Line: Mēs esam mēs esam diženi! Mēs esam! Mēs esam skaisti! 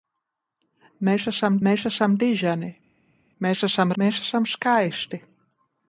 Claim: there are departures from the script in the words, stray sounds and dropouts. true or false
false